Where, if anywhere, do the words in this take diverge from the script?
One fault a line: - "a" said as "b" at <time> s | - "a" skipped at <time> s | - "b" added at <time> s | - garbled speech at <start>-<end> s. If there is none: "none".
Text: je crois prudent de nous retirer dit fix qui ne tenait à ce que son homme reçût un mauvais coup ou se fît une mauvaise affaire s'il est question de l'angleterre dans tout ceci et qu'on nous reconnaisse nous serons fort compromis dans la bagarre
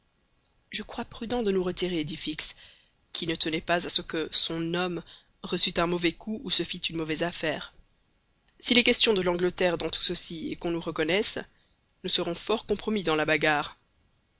- "pas" added at 3.6 s